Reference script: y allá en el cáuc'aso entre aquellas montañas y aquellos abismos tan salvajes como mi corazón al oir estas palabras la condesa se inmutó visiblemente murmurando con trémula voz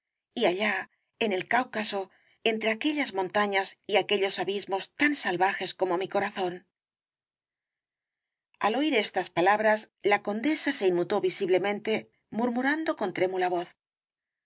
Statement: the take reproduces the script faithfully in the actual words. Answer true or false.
true